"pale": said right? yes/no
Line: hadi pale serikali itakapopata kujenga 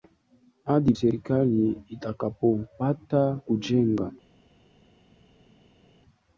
no